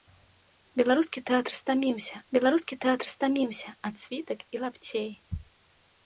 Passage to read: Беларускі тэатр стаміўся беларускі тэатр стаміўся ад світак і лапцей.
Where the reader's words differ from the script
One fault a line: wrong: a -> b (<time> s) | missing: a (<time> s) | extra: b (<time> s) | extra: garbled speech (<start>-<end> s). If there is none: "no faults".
no faults